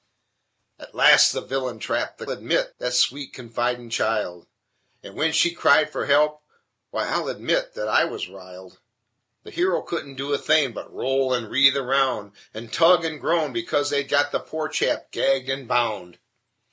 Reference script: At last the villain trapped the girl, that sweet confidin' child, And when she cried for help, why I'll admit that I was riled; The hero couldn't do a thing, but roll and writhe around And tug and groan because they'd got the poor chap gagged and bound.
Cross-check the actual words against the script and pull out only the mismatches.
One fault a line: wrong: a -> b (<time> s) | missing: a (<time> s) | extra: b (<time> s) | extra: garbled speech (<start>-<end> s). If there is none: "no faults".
wrong: girl -> admit (2.3 s)